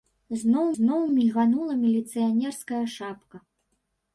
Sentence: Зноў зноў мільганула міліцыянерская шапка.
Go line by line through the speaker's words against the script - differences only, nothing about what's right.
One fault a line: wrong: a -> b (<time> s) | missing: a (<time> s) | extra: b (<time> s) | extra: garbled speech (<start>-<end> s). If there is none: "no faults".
no faults